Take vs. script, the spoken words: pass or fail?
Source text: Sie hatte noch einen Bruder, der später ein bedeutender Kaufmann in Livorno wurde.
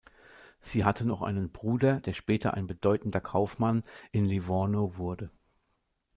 pass